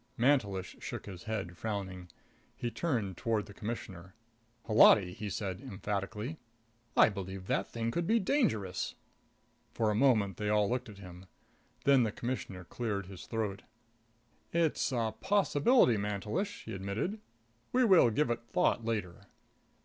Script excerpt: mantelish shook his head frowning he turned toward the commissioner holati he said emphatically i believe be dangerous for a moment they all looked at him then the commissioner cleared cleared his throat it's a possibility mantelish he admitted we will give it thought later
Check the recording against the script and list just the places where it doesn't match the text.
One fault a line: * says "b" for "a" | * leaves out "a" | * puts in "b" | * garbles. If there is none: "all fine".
* puts in "that thing could"
* leaves out "cleared"